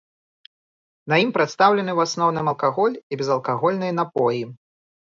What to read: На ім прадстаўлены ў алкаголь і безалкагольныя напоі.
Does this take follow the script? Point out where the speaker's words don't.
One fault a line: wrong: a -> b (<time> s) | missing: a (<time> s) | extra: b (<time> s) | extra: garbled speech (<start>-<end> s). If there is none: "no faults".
extra: асноўным (2.1 s)